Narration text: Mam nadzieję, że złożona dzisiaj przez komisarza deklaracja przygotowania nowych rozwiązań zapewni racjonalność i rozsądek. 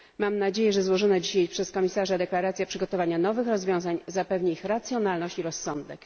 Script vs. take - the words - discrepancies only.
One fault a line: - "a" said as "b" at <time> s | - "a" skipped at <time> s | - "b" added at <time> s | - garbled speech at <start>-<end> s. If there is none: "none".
- "ich" added at 4.5 s